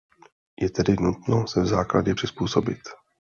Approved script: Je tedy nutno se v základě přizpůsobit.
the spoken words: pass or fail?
pass